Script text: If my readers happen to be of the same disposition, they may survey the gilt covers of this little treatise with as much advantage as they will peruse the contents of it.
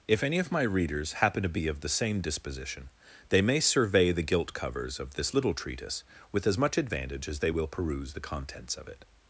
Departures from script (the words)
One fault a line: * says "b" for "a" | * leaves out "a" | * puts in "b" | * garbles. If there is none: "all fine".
* puts in "any of"